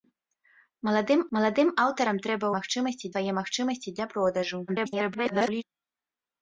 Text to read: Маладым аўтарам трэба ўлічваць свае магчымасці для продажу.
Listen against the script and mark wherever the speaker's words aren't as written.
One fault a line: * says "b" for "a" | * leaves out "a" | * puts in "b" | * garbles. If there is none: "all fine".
* puts in "маладым"
* says "магчымасці" for "ўлічваць"
* garbles